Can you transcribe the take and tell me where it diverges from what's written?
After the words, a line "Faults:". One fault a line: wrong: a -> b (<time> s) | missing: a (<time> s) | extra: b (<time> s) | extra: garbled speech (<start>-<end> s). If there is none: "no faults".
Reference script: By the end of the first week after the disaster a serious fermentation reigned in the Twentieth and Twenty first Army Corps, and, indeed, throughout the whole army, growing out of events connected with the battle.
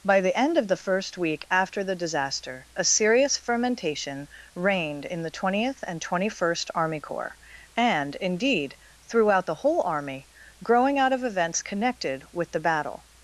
By the end of the first week after the disaster a serious fermentation reigned in the Twentieth and Twenty first Army Corps, and, indeed, throughout the whole army, growing out of events connected with the battle.
Faults:
no faults